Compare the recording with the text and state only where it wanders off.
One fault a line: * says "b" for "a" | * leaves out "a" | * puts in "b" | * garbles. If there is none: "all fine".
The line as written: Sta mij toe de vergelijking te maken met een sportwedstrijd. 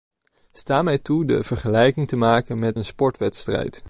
all fine